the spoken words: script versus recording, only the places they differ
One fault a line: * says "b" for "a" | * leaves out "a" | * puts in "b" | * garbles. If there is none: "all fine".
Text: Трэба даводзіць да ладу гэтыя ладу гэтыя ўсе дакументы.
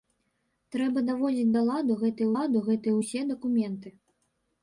all fine